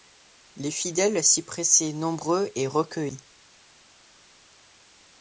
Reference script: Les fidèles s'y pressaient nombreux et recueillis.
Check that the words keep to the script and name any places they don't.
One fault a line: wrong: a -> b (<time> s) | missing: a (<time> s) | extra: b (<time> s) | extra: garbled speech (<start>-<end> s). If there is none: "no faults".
no faults